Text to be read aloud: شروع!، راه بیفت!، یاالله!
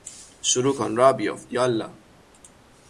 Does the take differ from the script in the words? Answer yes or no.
yes